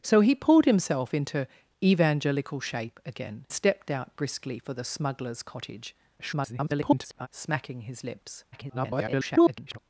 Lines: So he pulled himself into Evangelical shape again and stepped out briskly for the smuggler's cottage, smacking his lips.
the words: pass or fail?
fail